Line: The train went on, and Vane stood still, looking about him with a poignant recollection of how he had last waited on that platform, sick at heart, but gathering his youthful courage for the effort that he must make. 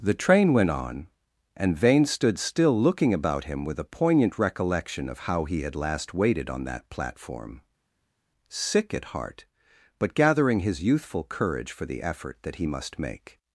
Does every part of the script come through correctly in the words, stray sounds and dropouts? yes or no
yes